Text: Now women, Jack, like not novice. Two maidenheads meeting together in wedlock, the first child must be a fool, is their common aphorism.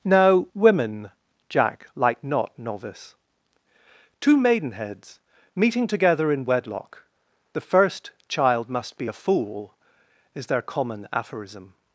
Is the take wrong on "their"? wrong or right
right